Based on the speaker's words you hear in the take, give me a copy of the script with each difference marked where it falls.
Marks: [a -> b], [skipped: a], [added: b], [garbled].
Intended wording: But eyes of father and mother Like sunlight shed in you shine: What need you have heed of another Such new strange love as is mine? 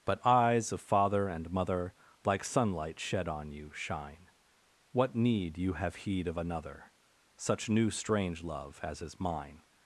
But eyes of father and mother Like sunlight shed [in -> on] you shine: What need you have heed of another Such new strange love as is mine?